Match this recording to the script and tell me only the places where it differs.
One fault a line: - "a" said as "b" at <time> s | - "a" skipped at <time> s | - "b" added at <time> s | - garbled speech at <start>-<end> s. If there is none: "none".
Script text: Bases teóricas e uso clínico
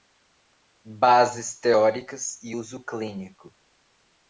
none